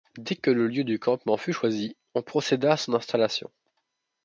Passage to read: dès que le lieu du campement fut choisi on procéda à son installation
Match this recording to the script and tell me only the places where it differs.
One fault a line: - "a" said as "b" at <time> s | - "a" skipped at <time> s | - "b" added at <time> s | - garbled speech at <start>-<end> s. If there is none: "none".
none